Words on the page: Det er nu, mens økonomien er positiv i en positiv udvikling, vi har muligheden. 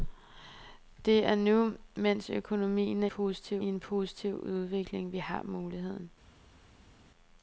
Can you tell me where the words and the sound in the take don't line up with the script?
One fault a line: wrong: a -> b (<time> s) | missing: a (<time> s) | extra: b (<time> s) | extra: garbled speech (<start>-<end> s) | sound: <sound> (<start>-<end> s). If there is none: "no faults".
no faults